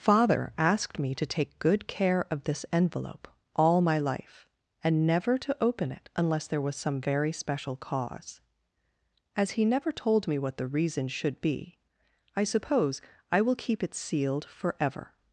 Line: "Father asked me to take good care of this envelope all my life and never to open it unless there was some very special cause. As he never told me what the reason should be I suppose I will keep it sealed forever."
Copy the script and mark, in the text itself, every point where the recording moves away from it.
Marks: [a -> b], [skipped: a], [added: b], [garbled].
"Father asked me to take good care of this envelope all my life and never to open it unless there was some very special cause. As he never told me what the reason should be I suppose I will keep it sealed forever."